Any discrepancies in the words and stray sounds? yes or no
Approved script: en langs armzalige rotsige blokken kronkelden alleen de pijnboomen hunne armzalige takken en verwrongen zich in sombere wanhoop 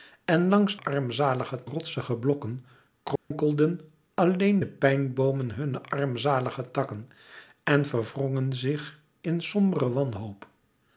yes